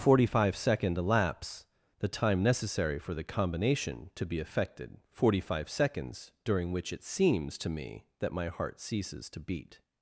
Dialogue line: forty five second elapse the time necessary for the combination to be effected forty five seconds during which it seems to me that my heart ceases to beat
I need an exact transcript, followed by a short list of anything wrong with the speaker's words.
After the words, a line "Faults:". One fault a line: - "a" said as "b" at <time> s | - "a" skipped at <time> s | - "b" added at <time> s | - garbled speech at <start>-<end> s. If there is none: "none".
forty five second elapse the time necessary for the combination to be effected forty five seconds during which it seems to me that my heart ceases to beat
Faults:
none